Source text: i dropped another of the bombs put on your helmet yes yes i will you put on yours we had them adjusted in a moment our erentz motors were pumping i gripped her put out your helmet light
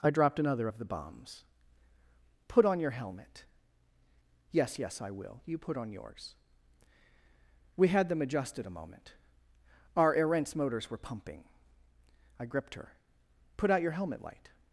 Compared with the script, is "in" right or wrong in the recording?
wrong